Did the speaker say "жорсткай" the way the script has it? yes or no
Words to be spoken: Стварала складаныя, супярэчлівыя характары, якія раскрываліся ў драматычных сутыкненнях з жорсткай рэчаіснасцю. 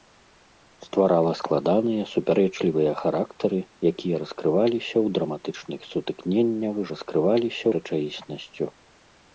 no